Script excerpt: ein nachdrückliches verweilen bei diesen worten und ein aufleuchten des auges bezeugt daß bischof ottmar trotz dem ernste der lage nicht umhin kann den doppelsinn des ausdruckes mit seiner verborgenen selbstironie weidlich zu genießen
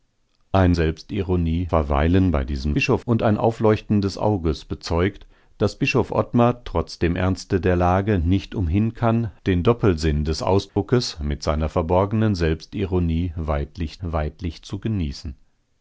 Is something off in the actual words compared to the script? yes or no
yes